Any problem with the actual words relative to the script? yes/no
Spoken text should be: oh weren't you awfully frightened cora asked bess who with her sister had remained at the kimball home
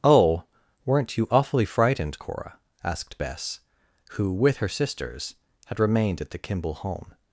yes